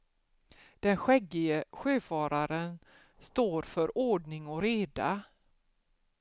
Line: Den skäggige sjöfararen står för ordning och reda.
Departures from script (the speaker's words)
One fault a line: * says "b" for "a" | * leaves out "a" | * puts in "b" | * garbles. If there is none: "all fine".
all fine